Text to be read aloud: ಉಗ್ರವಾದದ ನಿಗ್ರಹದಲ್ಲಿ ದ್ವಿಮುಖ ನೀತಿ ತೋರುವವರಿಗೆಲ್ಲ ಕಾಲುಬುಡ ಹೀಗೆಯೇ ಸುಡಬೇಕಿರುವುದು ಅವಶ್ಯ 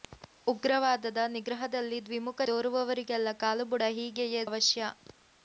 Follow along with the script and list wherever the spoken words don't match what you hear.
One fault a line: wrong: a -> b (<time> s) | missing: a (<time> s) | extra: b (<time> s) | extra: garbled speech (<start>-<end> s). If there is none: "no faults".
missing: ನೀತಿ (2.5 s)
missing: ಸುಡಬೇಕಿರುವುದು (4.4 s)